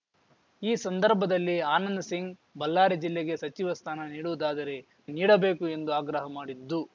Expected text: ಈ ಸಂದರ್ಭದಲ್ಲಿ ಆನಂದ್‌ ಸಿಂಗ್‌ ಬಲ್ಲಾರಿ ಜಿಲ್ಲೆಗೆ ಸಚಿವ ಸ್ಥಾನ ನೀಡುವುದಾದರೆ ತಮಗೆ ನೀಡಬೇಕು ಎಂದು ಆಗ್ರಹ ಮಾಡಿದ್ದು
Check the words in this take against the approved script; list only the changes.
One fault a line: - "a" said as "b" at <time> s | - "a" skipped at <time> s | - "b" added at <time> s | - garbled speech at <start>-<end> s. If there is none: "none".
- "ತಮಗೆ" skipped at 4.8 s